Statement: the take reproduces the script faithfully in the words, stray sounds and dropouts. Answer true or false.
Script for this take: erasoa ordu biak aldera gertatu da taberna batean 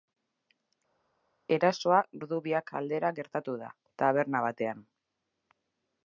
true